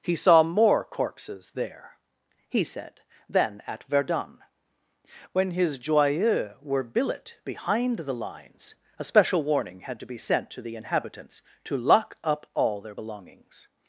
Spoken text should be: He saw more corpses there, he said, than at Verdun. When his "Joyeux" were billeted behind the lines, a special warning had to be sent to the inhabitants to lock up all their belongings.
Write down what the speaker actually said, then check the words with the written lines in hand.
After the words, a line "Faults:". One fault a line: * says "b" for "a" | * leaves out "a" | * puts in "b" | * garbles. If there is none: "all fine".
He saw more corpses there, he said, than at Verdun. When his "Joyeux" were billet behind the lines, a special warning had to be sent to the inhabitants to lock up all their belongings.
Faults:
* says "billet" for "billeted"